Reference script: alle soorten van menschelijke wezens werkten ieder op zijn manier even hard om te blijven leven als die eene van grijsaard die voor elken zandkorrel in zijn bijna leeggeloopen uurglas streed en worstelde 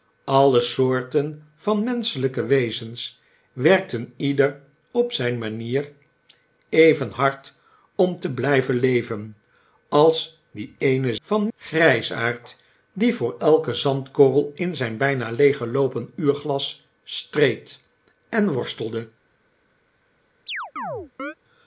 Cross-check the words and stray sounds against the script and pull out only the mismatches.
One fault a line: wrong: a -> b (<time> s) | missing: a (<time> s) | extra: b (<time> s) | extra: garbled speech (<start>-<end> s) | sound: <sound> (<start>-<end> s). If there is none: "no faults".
sound: chirp (20.5-21.3 s)